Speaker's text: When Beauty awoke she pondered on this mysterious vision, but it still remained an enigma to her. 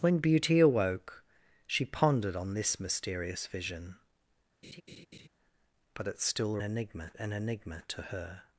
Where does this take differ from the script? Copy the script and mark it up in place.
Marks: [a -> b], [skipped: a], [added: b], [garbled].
When Beauty awoke she pondered on this mysterious vision, but it still [remained -> enigma] an enigma to her.